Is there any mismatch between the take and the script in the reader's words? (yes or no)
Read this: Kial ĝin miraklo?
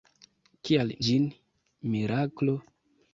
no